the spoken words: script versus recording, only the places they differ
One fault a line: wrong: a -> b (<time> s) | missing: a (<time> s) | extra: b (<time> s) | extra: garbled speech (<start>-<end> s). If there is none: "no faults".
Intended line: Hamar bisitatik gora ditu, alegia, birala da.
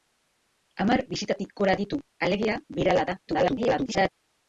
extra: garbled speech (3.3-4.1 s)